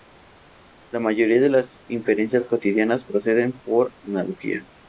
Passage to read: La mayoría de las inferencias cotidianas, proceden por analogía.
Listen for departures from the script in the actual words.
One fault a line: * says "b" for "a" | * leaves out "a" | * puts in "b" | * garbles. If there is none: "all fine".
all fine